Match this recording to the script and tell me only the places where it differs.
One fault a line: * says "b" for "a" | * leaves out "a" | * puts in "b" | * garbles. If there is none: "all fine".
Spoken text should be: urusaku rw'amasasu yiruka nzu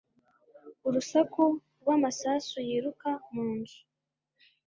* puts in "mu"